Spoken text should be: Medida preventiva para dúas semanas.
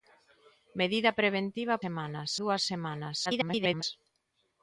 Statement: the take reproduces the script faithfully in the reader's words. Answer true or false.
false